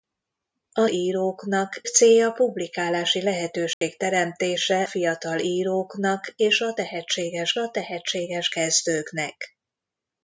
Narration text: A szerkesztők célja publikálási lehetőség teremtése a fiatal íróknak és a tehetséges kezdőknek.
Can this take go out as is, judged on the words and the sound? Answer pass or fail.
fail